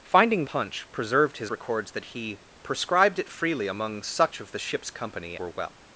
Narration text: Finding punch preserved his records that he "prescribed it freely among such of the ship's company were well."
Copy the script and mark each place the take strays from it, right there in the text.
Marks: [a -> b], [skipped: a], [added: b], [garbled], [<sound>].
Finding punch preserved his records that he "prescribed it freely among such of the ship's company were well."